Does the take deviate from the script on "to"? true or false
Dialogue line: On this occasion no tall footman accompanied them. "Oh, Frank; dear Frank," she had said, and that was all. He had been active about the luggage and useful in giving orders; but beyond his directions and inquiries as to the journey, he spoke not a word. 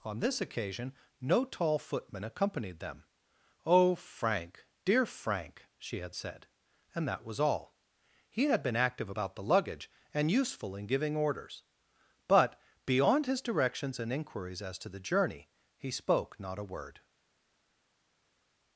false